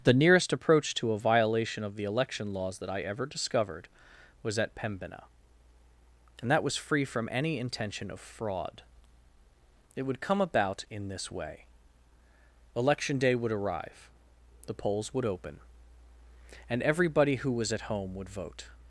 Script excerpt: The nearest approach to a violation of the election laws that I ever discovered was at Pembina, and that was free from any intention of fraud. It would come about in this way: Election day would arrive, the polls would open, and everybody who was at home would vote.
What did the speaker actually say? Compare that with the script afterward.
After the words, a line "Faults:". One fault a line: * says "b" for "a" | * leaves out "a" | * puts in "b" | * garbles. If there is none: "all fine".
The nearest approach to a violation of the election laws that I ever discovered was at Pembina, and that was free from any intention of fraud. It would come about in this way: Election day would arrive, the polls would open, and everybody who was at home would vote.
Faults:
all fine